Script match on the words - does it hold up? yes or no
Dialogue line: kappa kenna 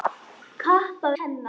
yes